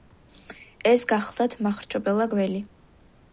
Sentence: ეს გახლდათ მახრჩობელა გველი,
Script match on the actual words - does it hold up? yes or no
yes